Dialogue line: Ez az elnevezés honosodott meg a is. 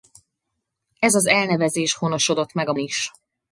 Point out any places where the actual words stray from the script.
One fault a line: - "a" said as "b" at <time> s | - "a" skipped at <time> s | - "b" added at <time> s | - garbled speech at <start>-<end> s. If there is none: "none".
none